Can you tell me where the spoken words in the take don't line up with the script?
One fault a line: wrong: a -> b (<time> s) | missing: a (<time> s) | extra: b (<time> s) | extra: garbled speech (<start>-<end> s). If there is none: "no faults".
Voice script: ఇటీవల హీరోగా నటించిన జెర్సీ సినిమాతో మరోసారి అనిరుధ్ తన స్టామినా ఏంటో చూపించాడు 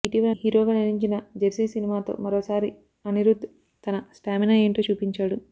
no faults